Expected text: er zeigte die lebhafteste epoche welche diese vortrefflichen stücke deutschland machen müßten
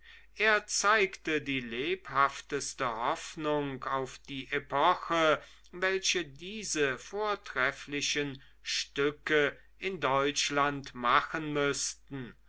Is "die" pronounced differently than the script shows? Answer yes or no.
no